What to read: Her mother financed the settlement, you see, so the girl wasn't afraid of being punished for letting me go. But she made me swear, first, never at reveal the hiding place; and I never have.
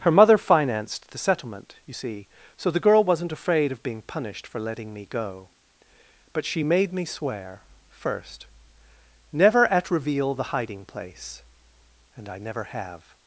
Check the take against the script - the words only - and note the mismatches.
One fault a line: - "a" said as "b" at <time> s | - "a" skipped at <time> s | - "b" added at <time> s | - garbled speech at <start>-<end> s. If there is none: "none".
none